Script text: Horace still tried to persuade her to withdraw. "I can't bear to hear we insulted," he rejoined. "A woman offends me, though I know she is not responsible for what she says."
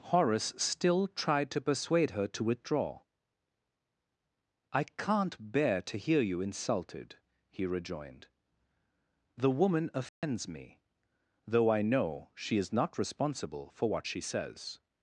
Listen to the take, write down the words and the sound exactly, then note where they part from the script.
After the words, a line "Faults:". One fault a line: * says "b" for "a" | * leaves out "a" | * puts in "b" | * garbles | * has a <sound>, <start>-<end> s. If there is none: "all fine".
Horace still tried to persuade her to withdraw. "I can't bear to hear you insulted," he rejoined. "The woman offends me, though I know she is not responsible for what she says."
Faults:
* says "you" for "we"
* says "The" for "A"
* has a dropout, 10.1-10.2 s